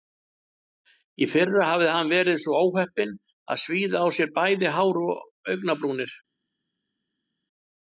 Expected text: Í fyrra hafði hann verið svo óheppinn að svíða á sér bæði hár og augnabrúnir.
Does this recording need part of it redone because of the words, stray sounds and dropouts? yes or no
no